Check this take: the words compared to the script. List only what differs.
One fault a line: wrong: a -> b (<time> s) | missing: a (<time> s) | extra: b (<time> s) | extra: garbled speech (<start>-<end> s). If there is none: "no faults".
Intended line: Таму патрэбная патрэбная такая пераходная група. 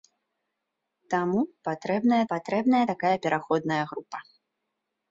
no faults